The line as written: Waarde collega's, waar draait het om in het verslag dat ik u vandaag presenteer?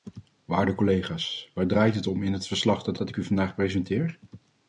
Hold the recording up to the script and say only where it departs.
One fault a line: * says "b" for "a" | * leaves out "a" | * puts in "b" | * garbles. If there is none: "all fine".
* puts in "dat"